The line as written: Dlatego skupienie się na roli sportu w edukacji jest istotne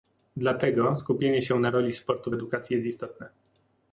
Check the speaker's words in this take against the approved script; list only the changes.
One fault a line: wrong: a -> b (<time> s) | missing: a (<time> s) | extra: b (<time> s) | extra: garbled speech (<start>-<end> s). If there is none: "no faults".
no faults